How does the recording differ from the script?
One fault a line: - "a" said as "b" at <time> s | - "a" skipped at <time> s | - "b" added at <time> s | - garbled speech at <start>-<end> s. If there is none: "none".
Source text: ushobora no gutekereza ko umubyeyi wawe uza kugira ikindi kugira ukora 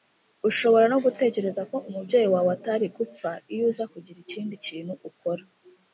- "atari gupfa iyo" added at 2.6 s
- "kugira" said as "kintu" at 4.6 s